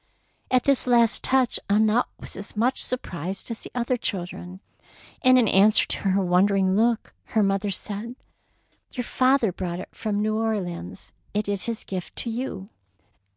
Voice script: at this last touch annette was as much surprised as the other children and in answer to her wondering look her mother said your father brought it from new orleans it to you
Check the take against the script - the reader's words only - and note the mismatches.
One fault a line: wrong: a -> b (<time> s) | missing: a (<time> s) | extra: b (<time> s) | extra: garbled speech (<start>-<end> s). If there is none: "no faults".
extra: is his gift (11.5 s)